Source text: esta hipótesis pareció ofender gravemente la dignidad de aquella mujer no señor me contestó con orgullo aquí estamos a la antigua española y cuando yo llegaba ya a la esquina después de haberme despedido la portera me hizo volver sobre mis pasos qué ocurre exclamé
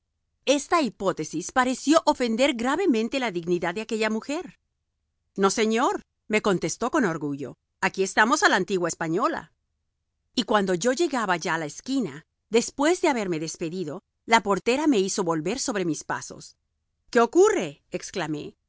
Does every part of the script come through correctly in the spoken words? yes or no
yes